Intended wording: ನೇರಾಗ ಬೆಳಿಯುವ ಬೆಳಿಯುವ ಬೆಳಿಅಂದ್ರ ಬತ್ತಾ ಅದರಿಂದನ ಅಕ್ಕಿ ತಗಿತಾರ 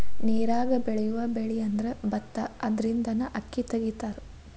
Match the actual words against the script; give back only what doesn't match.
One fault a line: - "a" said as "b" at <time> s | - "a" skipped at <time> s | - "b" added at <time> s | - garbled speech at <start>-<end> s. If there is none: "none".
- "ಬೆಳಿಯುವ" skipped at 1.2 s